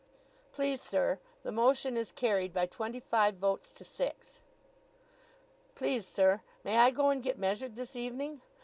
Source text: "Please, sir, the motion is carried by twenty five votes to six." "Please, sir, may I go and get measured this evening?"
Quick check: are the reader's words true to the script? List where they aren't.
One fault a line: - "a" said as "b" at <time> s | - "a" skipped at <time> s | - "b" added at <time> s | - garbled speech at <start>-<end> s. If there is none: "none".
none